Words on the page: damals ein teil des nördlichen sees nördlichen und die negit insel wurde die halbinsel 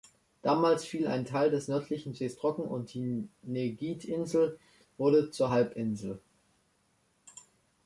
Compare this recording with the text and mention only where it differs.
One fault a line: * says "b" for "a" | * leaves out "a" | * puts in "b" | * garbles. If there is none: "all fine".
* puts in "fiel"
* says "trocken" for "nördlichen"
* says "zur" for "die"